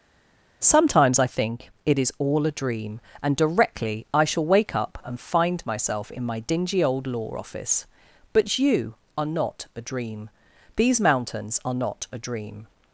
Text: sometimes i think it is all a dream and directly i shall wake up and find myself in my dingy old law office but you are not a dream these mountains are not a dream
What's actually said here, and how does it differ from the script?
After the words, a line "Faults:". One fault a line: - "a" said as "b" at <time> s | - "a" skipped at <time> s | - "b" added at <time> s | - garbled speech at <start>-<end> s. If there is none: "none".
sometimes i think it is all a dream and directly i shall wake up and find myself in my dingy old law office but you are not a dream these mountains are not a dream
Faults:
none